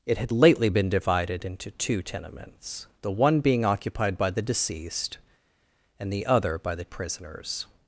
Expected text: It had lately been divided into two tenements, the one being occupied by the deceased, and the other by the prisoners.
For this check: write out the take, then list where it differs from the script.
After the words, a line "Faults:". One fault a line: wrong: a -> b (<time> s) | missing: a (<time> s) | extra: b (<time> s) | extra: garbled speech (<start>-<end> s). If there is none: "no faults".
It had lately been divided into two tenements, the one being occupied by the deceased, and the other by the prisoners.
Faults:
no faults